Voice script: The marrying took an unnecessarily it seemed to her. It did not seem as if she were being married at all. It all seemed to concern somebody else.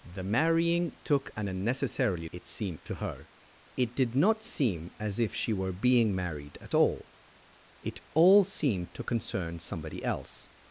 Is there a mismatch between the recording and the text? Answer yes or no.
no